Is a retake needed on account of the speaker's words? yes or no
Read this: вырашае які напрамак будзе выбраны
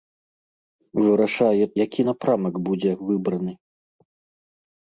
no